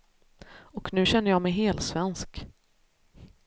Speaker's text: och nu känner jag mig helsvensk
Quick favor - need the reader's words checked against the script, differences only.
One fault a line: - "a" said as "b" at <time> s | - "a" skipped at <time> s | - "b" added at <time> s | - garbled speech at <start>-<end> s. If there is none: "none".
none